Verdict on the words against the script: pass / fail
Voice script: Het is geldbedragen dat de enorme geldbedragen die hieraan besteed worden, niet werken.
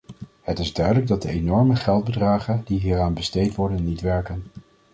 fail